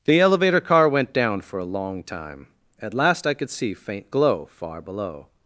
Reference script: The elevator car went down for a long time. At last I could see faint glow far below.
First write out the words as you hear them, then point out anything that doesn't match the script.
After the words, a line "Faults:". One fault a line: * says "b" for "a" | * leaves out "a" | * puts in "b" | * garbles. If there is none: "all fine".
The elevator car went down for a long time. At last I could see faint glow far below.
Faults:
all fine